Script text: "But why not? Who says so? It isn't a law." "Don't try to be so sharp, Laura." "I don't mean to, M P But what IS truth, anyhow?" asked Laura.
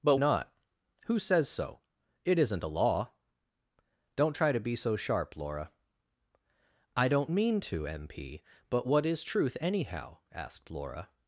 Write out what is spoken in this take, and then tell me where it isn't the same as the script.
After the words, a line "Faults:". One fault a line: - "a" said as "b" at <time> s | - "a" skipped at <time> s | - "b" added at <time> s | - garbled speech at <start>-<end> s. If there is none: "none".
"But not? Who says so? It isn't a law." "Don't try to be so sharp, Laura." "I don't mean to, M P But what IS truth, anyhow?" asked Laura.
Faults:
- "why" skipped at 0.2 s